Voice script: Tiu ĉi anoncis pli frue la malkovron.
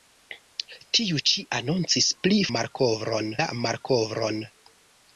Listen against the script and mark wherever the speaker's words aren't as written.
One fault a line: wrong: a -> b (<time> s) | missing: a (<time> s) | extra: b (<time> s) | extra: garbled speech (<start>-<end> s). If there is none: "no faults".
wrong: frue -> malkovron (2.6 s)